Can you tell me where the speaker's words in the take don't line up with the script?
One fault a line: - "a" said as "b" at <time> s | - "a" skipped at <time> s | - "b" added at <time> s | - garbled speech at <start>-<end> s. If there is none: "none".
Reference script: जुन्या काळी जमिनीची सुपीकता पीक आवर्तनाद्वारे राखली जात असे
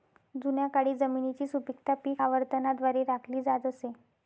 none